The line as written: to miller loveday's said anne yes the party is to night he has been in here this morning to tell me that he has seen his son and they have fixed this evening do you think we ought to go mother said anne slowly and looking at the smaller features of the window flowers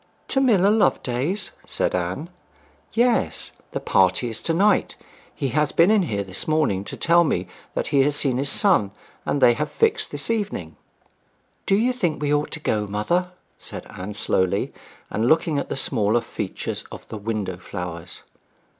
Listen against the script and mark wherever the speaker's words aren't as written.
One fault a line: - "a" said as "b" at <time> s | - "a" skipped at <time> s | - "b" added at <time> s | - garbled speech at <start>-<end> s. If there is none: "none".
none